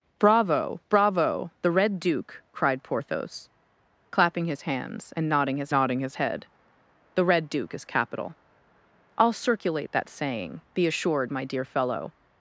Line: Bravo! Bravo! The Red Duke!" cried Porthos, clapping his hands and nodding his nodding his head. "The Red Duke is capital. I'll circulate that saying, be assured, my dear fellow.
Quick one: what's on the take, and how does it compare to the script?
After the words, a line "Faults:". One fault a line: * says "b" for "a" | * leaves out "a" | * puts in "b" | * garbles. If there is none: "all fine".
Bravo! Bravo! The Red Duke!" cried Porthos, clapping his hands and nodding his nodding his head. "The Red Duke is capital. I'll circulate that saying, be assured, my dear fellow.
Faults:
all fine